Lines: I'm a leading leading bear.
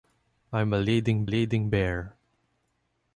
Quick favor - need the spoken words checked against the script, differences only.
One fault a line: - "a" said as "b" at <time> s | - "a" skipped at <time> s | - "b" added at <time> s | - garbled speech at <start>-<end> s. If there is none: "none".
none